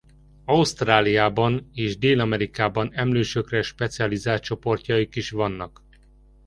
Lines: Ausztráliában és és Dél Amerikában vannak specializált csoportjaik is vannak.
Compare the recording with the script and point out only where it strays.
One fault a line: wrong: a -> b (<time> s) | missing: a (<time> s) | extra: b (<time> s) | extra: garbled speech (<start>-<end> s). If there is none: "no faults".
missing: és (2.0 s)
wrong: vannak -> emlősökre (2.9 s)